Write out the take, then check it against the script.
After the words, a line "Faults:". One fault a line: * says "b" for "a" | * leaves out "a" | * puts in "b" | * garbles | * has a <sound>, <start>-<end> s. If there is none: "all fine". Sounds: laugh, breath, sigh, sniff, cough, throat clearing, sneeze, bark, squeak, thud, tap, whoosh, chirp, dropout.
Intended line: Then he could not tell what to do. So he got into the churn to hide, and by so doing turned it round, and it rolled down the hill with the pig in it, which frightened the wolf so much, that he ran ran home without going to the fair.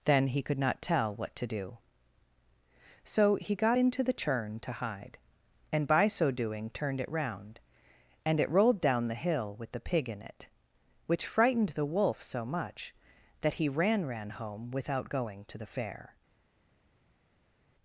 Then he could not tell what to do. So he got into the churn to hide, and by so doing turned it round, and it rolled down the hill with the pig in it, which frightened the wolf so much, that he ran ran home without going to the fair.
Faults:
all fine